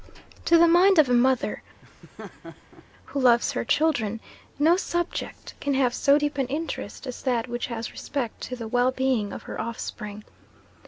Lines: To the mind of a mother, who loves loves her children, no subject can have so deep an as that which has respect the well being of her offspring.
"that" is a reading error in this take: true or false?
false